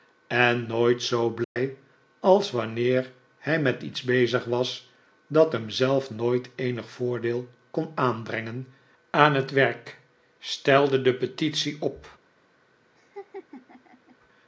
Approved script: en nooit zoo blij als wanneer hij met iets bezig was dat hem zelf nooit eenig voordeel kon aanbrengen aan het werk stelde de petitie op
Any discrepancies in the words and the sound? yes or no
yes